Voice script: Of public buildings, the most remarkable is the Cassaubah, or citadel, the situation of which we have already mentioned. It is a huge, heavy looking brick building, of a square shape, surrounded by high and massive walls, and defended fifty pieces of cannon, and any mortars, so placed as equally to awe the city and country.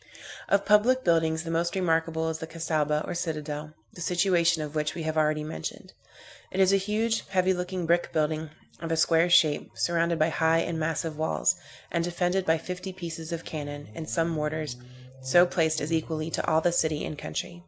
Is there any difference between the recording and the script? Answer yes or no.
yes